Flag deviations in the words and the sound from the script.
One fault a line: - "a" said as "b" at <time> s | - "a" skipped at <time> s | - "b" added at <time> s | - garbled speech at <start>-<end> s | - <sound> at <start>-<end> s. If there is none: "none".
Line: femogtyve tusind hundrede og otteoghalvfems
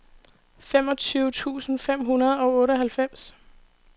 - "fem" added at 1.8 s